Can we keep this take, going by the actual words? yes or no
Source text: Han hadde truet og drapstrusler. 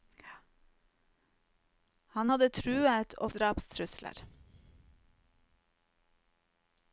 yes